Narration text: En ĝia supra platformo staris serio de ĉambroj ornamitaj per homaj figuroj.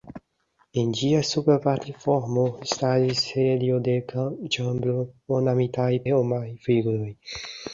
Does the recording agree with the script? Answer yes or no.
no